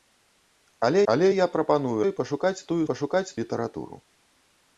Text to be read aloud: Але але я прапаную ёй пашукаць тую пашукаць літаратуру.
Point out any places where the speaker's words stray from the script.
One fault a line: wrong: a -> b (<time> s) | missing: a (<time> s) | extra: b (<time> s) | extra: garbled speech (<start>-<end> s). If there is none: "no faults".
no faults